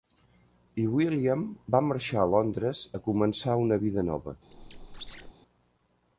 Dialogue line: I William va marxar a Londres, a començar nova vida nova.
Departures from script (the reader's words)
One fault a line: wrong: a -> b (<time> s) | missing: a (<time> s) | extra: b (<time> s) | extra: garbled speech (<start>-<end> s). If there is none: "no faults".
wrong: nova -> una (3.6 s)